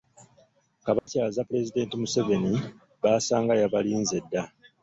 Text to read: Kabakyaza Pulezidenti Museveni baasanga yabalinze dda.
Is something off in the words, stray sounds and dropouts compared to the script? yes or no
yes